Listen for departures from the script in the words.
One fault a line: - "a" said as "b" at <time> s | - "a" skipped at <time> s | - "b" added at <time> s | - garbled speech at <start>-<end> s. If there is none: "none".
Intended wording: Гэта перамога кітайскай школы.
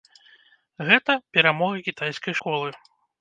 none